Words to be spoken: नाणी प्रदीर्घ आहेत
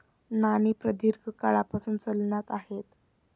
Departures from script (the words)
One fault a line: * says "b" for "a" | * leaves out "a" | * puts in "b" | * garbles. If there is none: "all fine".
* puts in "काळापासून चलनात"